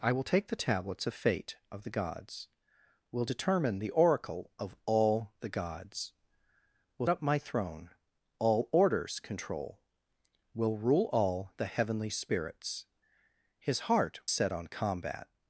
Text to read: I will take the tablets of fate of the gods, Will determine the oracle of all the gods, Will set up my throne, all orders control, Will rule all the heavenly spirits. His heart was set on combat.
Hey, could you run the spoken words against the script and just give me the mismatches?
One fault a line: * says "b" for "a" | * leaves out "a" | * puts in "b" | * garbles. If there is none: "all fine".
* leaves out "set"
* leaves out "was"